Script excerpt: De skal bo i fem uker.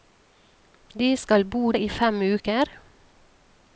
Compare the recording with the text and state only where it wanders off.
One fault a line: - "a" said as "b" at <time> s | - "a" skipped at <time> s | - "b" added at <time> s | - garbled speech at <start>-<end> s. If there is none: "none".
none